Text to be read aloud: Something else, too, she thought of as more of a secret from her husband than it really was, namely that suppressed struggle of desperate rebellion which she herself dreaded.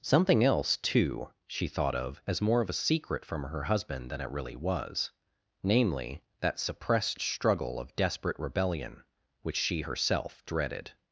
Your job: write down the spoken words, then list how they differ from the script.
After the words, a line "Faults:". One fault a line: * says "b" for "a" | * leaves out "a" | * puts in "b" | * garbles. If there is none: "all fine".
Something else, too, she thought of as more of a secret from her husband than it really was, namely that suppressed struggle of desperate rebellion which she herself dreaded.
Faults:
all fine